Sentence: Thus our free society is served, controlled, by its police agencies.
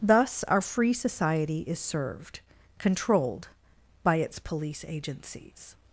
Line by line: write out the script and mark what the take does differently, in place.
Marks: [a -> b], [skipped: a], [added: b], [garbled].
Thus our free society is served, controlled, by its police agencies.